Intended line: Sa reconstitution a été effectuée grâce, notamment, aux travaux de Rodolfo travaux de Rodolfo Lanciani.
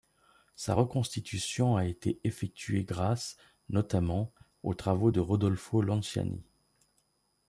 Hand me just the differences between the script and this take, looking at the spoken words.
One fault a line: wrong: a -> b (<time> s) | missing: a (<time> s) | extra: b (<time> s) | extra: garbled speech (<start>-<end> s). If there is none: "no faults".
missing: travaux de Rodolfo (5.8 s)